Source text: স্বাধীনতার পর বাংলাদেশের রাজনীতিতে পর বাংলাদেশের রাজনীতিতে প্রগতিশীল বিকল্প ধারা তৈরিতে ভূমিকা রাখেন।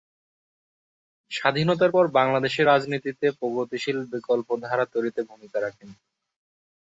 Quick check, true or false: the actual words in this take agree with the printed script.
false